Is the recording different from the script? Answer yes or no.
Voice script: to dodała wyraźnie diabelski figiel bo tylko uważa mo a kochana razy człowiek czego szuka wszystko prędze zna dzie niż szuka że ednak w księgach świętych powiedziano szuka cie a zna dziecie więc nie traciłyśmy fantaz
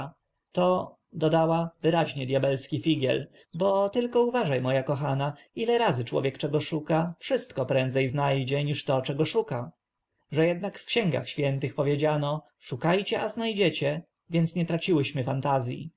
yes